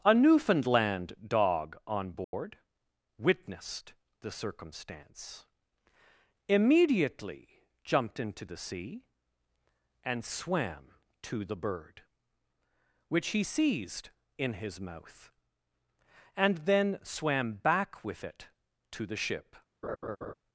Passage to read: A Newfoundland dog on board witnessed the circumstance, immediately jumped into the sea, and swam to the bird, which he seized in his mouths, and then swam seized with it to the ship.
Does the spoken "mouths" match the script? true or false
false